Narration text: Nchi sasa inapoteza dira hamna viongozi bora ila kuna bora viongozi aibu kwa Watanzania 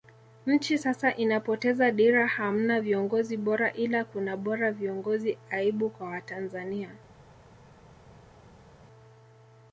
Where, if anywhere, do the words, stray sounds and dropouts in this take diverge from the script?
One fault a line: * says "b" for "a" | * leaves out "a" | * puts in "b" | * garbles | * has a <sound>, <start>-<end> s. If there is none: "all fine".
all fine